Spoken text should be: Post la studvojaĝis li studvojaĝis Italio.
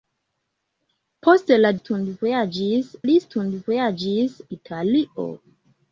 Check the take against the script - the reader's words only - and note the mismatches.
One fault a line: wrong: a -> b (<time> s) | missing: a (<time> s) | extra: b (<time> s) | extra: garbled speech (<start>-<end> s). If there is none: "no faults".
no faults